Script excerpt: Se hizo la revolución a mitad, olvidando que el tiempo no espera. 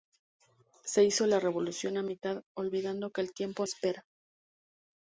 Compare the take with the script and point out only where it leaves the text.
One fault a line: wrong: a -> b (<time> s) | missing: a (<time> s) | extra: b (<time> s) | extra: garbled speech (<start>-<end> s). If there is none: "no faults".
missing: no (3.7 s)